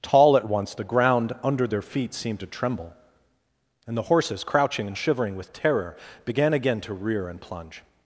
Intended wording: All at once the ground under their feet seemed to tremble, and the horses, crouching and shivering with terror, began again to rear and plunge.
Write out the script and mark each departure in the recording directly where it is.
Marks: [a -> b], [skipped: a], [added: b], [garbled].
[All -> Tall] at once the ground under their feet seemed to tremble, and the horses, crouching and shivering with terror, began again to rear and plunge.